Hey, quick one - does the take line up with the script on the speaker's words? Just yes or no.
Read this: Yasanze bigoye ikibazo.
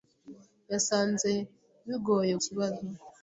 yes